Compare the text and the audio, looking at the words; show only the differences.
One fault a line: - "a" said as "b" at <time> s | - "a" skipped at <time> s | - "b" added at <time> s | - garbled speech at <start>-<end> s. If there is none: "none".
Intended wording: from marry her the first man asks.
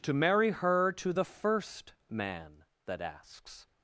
- "from" said as "to" at 0.0 s
- "to" added at 0.9 s
- "that" added at 2.8 s